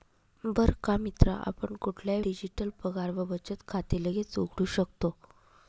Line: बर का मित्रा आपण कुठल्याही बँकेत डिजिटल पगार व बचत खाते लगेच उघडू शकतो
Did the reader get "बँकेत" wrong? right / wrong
wrong